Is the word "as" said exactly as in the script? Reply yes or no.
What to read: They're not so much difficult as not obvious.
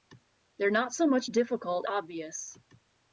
no